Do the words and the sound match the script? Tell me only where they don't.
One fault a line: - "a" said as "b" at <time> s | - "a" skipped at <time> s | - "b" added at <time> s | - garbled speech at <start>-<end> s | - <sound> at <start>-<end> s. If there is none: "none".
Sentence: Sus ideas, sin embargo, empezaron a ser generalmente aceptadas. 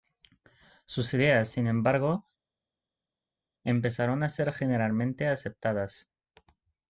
none